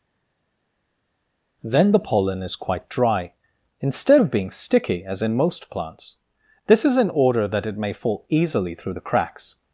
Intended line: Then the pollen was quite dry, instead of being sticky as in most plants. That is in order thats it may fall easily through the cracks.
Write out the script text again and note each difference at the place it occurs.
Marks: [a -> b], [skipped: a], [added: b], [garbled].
Then the pollen [was -> is] quite dry, instead of being sticky as in most plants. [That -> This] is in order [thats -> that] it may fall easily through the cracks.